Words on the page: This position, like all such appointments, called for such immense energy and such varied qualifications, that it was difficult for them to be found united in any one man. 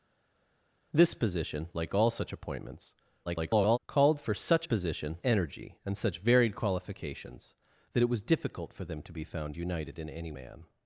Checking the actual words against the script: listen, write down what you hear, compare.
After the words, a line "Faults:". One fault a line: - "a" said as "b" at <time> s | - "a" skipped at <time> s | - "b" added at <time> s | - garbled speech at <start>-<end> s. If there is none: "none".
This position, like all such appointments, [garbled] called for such position energy and such varied qualifications, that it was difficult for them to be found united in any man.
Faults:
- garbled speech at 3.3-3.8 s
- "immense" said as "position" at 4.6 s
- "one" skipped at 10.3 s